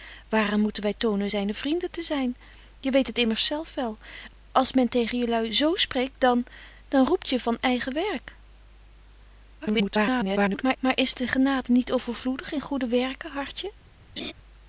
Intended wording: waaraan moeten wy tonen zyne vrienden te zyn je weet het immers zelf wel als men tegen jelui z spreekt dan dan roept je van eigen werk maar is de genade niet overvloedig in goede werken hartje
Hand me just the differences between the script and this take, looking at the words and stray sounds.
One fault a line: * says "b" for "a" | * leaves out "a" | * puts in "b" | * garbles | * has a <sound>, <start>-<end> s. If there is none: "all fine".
* garbles
* has a laugh, 14.2-14.3 s